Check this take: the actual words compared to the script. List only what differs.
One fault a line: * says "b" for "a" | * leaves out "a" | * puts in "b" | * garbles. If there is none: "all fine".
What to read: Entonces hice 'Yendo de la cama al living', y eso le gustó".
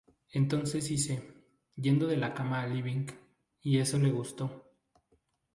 all fine